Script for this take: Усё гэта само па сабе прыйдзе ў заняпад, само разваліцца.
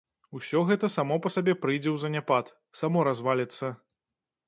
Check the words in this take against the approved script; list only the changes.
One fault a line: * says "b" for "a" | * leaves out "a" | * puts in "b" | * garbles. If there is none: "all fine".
all fine